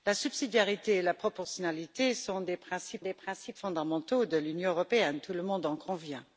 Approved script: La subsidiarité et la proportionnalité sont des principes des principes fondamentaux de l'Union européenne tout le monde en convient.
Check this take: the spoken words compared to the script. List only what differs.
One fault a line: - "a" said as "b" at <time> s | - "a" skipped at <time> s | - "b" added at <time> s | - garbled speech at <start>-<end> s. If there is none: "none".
none